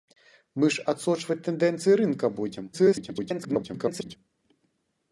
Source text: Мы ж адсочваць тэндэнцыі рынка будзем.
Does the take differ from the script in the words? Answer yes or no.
yes